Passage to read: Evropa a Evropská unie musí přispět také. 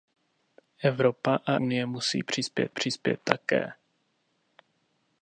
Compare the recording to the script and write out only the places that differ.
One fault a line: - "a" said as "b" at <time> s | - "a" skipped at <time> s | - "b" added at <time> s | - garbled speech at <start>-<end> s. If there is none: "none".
- "Evropská" skipped at 1.6 s
- "přispět" added at 2.7 s